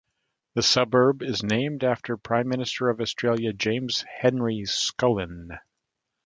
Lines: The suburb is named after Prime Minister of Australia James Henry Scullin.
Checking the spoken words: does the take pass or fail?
pass